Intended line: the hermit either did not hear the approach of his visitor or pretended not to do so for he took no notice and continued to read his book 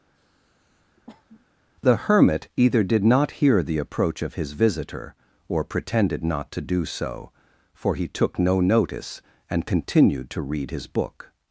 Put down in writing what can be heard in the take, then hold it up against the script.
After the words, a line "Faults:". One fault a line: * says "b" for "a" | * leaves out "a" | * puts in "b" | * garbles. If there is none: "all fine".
the hermit either did not hear the approach of his visitor or pretended not to do so for he took no notice and continued to read his book
Faults:
all fine